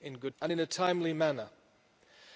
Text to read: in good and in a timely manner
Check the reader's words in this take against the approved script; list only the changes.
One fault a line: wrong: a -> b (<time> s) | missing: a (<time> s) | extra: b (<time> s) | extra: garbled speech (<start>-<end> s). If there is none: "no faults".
no faults